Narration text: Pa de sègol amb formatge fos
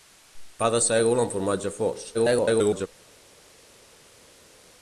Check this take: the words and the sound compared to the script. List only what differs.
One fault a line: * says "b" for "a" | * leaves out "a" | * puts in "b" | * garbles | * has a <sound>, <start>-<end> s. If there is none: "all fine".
* garbles